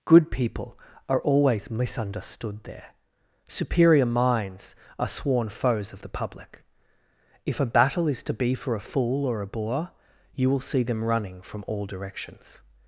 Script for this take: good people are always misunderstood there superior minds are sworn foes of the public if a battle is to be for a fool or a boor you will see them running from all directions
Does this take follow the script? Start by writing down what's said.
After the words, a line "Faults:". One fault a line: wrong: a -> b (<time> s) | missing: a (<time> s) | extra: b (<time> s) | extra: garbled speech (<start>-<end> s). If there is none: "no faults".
good people are always misunderstood there superior minds are sworn foes of the public if a battle is to be for a fool or a boor you will see them running from all directions
Faults:
no faults